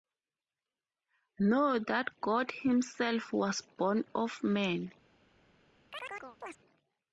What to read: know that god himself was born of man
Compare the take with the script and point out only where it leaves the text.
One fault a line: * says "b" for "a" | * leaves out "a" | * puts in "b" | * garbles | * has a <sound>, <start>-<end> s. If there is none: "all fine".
* has a chirp, 5.9-6.6 s